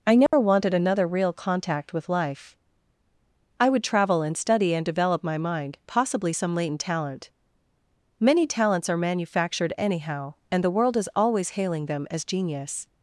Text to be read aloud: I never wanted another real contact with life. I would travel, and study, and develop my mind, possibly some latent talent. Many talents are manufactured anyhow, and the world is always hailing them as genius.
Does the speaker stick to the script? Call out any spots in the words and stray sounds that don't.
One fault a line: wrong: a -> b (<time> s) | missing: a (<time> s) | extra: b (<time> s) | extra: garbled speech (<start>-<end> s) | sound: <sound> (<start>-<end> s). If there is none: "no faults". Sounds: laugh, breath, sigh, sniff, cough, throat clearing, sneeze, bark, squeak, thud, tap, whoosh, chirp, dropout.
sound: dropout (0.3-0.3 s)